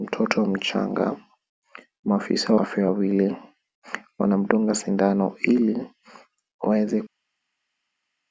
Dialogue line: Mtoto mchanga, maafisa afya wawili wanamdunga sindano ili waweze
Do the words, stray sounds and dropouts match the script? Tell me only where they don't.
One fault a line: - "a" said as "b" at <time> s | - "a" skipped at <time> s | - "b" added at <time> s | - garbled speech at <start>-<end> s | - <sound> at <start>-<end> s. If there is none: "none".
none